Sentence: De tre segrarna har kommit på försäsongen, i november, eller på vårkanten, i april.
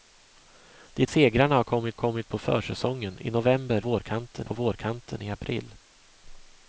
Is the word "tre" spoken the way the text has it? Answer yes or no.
no